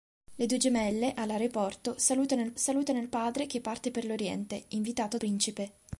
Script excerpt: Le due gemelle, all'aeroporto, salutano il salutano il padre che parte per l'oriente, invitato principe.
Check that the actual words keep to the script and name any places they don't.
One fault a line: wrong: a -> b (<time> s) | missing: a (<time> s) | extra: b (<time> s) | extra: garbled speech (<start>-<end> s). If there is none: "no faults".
no faults